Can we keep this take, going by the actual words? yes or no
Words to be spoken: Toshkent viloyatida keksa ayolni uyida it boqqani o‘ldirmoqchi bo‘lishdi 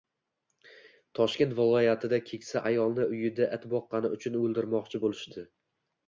no